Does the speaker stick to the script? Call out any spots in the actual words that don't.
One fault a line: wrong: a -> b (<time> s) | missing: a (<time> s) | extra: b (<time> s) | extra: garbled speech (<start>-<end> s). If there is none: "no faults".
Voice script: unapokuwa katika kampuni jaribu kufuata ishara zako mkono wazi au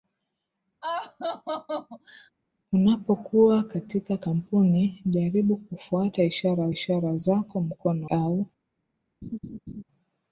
extra: ishara (6.7 s)
missing: wazi (8.1 s)